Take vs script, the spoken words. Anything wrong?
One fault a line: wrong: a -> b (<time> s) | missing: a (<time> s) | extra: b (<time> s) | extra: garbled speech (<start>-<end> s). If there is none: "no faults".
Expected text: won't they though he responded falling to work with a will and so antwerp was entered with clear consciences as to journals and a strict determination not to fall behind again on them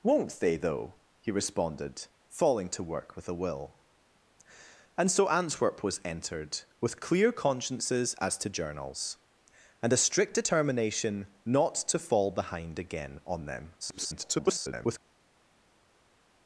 extra: garbled speech (13.8-15.0 s)